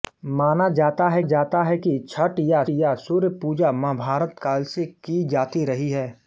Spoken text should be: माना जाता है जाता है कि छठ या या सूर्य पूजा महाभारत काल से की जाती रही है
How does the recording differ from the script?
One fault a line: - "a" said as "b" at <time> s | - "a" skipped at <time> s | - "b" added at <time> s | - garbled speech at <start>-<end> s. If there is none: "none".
none